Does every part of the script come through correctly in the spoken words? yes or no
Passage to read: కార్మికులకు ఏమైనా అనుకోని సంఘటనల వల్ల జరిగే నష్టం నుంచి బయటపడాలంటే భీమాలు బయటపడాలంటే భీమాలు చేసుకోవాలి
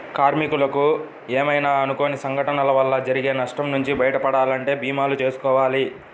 no